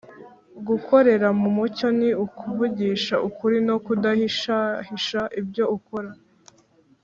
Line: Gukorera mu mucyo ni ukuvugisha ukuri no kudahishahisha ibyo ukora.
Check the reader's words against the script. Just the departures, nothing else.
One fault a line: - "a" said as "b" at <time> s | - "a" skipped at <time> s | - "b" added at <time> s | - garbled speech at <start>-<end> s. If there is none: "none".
none